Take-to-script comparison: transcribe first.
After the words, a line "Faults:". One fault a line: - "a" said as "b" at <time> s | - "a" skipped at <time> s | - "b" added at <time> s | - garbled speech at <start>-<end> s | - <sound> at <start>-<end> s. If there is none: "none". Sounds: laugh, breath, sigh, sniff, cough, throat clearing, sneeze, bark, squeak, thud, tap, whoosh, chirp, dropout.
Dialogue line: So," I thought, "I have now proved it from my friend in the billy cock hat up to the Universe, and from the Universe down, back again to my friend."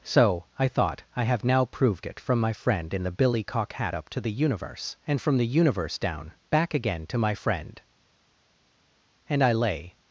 So," I thought, "I have now proved it from my friend in the billy cock hat up to the Universe, and from the Universe down, back again to my friend." And I lay
Faults:
- "And I lay" added at 9.3 s